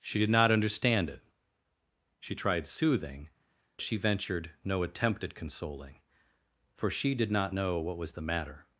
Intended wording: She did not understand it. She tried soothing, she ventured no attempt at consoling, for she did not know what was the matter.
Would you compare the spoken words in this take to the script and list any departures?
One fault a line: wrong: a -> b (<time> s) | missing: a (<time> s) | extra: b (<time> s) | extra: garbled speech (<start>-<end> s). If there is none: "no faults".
no faults